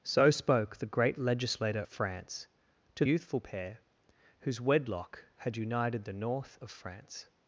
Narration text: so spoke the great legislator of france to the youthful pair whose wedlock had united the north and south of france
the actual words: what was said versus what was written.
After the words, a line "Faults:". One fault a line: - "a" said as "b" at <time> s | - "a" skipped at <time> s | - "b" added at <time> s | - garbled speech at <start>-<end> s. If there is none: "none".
so spoke the great legislator france to youthful pair whose wedlock had united the north of france
Faults:
- "of" skipped at 1.8 s
- "the" skipped at 3.0 s
- "and south" skipped at 6.6 s